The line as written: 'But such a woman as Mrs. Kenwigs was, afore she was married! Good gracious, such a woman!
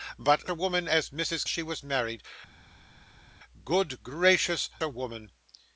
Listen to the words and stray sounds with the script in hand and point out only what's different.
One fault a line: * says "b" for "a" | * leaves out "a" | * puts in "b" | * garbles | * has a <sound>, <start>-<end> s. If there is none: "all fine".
* leaves out "such"
* leaves out "Kenwigs was afore"
* leaves out "such"